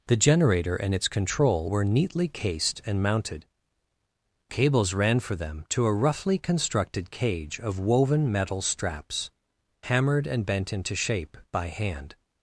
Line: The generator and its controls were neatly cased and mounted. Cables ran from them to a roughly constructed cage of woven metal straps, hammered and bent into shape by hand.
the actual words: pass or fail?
fail